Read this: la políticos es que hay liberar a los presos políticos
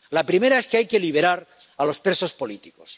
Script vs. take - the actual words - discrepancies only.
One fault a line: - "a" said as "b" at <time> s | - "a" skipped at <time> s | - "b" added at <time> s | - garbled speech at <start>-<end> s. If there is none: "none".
- "políticos" said as "primera" at 0.2 s
- "que" added at 0.9 s